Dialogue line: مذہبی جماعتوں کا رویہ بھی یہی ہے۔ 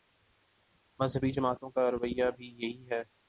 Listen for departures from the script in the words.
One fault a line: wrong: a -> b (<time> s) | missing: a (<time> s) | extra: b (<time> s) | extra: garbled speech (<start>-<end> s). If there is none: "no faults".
no faults